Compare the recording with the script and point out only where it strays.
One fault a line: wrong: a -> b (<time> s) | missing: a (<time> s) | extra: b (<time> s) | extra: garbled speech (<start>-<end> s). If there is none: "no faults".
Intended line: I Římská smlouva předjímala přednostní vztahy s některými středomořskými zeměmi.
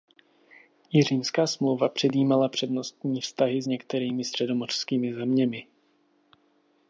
no faults